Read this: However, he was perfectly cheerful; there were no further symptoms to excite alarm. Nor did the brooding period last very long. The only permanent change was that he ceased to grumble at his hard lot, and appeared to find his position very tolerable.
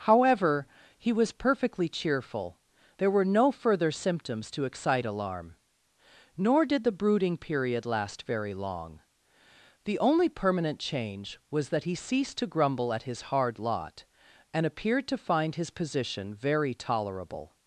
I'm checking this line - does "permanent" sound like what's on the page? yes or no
yes